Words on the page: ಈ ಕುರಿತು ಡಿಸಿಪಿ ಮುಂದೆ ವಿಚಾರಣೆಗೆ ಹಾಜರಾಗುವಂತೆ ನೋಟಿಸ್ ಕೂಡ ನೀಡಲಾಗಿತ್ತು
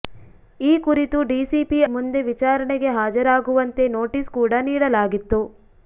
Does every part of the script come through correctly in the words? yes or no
yes